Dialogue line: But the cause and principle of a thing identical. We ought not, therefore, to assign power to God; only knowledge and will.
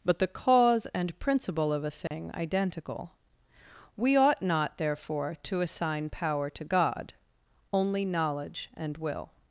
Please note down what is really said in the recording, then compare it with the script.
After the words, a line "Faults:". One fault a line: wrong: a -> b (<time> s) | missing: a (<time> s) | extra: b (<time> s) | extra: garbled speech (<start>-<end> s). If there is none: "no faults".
But the cause and principle of a thing identical. We ought not, therefore, to assign power to God; only knowledge and will.
Faults:
no faults